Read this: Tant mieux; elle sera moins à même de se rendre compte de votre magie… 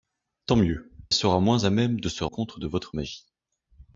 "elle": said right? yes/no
no